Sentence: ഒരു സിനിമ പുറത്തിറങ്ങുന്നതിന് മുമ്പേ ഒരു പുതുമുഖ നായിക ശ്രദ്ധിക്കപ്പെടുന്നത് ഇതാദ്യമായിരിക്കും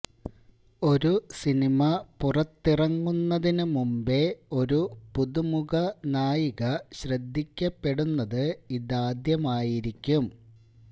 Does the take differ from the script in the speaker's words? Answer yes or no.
no